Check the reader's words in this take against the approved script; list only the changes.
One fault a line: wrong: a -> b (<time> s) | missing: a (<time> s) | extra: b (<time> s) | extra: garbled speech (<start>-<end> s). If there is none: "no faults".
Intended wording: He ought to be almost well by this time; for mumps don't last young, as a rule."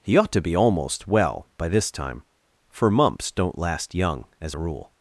no faults